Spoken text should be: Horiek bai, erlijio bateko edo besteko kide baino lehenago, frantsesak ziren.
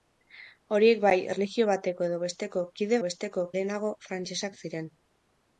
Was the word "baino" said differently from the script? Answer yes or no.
yes